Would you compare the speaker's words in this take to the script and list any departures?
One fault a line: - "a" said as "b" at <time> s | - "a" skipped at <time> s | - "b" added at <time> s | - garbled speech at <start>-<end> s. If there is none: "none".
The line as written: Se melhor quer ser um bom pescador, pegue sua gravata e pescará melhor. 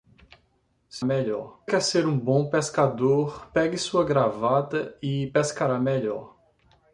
none